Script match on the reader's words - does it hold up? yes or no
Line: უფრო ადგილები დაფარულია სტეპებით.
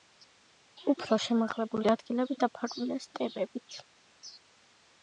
no